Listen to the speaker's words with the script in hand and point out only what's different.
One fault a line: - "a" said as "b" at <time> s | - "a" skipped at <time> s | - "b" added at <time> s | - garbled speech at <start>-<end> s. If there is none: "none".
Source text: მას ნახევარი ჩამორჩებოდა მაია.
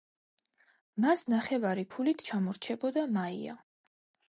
- "ქულით" added at 2.0 s